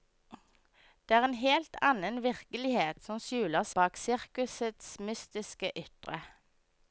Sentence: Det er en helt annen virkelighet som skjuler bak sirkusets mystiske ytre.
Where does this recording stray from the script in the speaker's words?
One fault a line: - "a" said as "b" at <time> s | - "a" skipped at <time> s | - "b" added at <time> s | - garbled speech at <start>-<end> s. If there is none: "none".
none